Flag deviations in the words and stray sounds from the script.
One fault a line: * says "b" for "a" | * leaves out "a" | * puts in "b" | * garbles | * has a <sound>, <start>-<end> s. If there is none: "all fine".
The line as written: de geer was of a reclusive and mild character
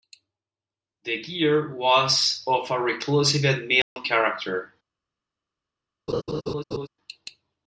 * has a dropout, 3.8-4.0 s
* has a laugh, 6.1-6.9 s